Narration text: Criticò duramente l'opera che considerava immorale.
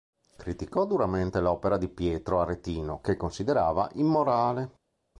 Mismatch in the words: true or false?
true